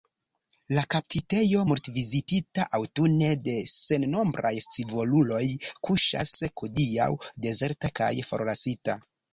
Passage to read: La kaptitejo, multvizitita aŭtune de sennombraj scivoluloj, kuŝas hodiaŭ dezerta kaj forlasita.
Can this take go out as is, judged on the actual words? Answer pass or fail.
pass